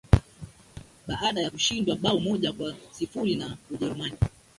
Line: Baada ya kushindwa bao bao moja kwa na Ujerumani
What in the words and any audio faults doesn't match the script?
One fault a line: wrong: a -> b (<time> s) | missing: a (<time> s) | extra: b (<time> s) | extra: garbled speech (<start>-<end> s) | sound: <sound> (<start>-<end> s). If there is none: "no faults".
sound: thud (0.8-0.9 s)
missing: bao (2.2 s)
extra: sifuri (2.9 s)